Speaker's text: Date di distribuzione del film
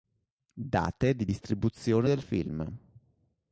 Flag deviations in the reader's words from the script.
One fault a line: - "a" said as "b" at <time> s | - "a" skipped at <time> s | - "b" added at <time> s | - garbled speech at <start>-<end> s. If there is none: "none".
none